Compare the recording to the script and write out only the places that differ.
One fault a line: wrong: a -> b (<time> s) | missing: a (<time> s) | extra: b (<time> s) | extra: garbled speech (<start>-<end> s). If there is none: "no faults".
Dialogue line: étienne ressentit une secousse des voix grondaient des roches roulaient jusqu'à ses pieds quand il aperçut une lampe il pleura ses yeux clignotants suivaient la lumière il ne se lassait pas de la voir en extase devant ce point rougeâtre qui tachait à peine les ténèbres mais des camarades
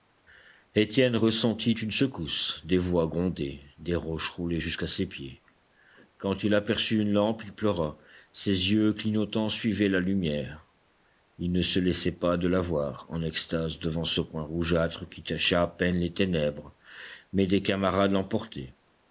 no faults